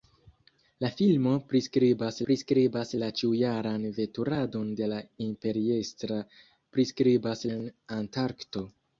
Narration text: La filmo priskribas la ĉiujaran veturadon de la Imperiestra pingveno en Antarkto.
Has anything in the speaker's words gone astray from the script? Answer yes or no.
yes